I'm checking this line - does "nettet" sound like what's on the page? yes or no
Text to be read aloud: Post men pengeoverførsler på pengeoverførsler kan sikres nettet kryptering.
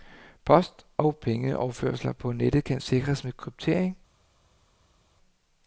no